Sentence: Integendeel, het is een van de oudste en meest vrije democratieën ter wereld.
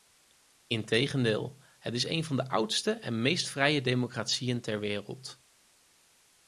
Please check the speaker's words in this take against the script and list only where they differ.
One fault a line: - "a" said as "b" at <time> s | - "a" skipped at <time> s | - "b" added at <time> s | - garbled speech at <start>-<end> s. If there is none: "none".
none